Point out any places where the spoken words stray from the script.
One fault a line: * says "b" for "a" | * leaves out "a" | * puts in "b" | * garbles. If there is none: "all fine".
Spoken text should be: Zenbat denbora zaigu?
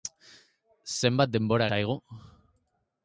all fine